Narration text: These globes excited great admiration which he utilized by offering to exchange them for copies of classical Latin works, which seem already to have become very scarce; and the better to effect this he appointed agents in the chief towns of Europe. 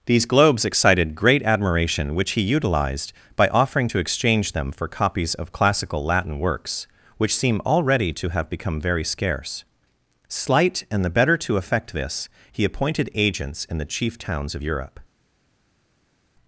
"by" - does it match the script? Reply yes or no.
yes